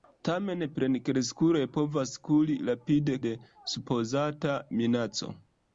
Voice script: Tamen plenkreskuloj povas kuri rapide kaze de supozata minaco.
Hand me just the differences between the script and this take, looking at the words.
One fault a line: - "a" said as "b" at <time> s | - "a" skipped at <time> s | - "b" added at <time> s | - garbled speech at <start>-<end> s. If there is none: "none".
- "kaze" skipped at 3.2 s